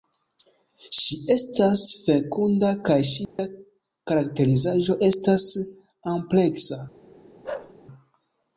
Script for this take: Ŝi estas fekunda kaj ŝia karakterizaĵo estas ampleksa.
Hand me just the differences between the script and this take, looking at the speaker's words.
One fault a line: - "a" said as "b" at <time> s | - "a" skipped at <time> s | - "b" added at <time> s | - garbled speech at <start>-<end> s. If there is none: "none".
none